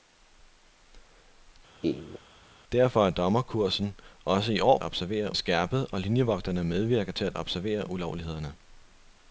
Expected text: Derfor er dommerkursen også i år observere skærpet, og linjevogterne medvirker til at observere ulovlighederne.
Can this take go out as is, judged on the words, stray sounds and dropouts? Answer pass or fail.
fail